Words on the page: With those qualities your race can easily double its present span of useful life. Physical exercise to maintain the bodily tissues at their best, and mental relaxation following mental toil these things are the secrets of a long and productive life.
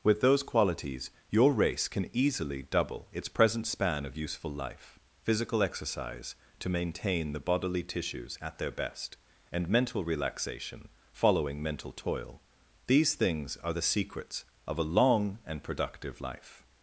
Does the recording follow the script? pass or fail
pass